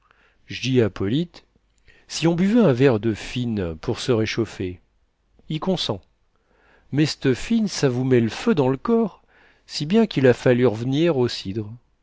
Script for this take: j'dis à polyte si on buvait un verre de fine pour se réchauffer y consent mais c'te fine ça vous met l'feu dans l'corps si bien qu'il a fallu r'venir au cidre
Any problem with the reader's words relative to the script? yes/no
no